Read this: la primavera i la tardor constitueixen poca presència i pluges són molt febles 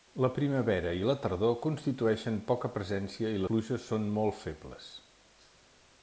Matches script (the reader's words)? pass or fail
pass